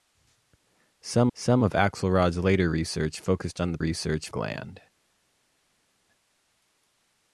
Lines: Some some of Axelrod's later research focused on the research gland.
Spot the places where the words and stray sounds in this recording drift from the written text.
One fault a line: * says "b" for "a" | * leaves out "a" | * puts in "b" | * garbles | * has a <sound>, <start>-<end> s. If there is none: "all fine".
all fine